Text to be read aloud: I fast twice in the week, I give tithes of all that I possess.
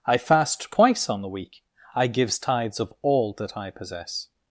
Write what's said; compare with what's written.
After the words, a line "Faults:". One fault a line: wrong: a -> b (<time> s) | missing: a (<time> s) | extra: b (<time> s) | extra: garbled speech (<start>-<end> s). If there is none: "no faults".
I fast twice on the week, I gives tithes of all that I possess.
Faults:
wrong: in -> on (1.1 s)
wrong: give -> gives (2.1 s)